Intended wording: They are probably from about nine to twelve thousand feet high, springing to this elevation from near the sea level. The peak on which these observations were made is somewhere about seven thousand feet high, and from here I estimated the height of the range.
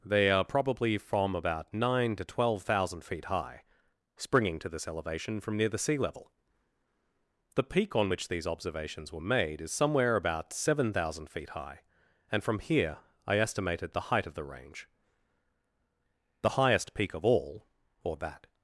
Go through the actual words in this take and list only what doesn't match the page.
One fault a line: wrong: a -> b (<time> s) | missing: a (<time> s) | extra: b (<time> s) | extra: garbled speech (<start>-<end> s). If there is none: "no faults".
extra: The highest peak of all or that (16.4 s)